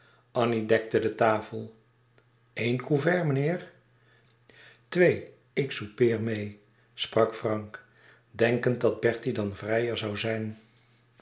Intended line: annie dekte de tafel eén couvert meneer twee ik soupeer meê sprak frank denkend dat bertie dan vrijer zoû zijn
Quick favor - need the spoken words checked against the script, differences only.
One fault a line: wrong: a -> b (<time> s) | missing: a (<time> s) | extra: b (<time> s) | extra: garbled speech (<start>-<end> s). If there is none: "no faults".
no faults